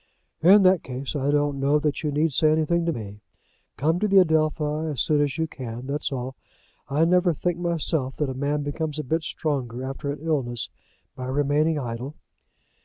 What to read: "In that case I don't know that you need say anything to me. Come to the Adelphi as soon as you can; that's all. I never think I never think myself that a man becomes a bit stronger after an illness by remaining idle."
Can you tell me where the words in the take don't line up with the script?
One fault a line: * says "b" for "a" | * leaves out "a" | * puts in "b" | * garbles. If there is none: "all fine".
* leaves out "I never think"